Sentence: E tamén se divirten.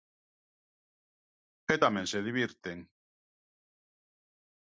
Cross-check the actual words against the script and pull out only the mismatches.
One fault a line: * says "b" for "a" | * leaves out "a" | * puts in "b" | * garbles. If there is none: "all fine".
all fine